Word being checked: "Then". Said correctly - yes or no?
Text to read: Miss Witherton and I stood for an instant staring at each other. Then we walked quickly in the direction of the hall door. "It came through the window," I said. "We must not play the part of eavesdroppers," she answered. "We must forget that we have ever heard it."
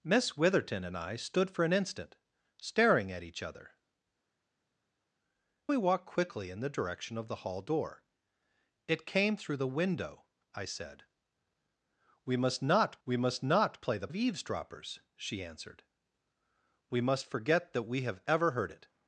no